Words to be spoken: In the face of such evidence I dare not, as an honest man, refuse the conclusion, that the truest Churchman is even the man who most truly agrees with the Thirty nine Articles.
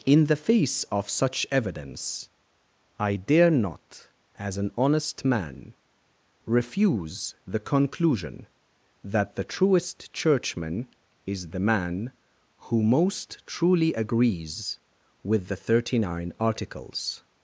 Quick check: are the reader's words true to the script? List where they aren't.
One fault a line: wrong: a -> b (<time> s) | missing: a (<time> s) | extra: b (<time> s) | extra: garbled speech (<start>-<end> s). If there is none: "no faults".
missing: even (11.5 s)